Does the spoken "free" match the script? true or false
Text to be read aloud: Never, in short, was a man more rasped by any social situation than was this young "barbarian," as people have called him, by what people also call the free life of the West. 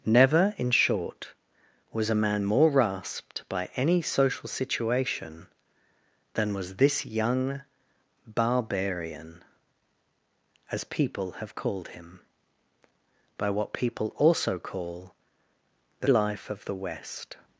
false